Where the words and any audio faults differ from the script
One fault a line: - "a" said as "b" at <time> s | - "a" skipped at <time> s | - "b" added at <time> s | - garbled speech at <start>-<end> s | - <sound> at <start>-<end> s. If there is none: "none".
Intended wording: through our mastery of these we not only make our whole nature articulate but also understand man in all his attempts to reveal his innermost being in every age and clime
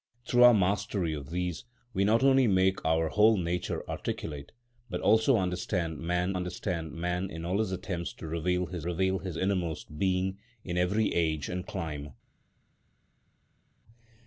- "understand man" added at 6.3 s
- "reveal his" added at 8.8 s